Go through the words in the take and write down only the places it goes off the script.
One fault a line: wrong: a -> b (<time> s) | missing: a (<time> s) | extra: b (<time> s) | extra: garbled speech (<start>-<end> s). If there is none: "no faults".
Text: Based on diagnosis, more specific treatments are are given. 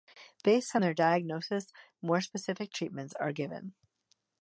extra: their (0.8 s)
missing: are (3.3 s)